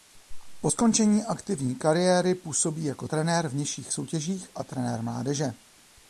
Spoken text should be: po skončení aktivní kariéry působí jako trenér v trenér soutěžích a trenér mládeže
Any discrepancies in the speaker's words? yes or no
yes